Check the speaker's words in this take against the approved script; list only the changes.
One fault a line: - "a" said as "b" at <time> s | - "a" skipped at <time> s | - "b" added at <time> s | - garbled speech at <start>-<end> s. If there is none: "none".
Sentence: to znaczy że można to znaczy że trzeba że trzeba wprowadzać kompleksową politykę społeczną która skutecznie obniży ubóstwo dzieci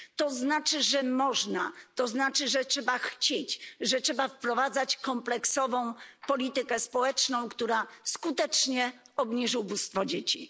- "chcieć" added at 3.0 s